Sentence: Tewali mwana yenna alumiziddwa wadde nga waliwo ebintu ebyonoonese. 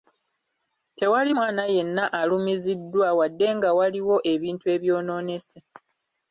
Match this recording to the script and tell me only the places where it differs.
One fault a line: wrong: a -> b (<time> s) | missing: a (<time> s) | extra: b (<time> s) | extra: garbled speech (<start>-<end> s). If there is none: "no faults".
no faults